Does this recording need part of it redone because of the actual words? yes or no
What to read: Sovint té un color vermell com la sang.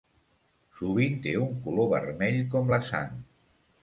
no